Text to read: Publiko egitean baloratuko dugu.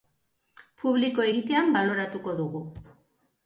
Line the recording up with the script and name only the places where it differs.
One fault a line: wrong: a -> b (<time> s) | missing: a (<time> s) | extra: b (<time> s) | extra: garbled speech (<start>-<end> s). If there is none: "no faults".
no faults